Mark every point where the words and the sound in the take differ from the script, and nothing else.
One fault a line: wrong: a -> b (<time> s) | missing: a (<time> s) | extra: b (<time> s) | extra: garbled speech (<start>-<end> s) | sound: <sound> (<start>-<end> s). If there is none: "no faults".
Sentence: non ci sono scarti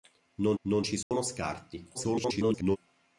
extra: non (0.6 s)
sound: dropout (1.0-1.1 s)
extra: garbled speech (1.9-2.8 s)